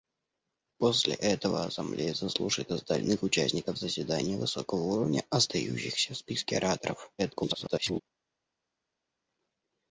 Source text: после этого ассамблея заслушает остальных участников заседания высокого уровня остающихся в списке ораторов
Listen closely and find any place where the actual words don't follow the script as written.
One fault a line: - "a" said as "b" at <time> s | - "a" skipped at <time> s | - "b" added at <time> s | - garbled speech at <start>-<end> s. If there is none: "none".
- garbled speech at 7.2-8.0 s